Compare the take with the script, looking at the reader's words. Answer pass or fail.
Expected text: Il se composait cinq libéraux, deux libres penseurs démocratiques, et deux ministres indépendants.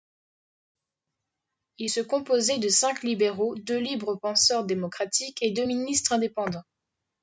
fail